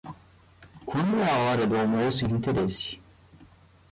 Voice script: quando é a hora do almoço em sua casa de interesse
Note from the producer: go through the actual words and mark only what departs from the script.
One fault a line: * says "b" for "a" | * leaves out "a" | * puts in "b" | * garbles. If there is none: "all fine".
* leaves out "sua casa de"